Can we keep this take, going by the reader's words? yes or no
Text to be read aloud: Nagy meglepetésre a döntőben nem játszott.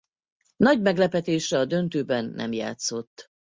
yes